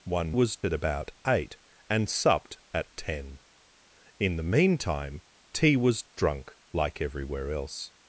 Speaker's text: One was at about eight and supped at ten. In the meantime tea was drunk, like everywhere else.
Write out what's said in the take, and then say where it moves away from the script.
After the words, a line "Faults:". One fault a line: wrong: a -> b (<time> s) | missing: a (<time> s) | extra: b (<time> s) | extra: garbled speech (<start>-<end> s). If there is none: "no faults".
One was at about eight and supped at ten. In the meantime tea was drunk, like everywhere else.
Faults:
no faults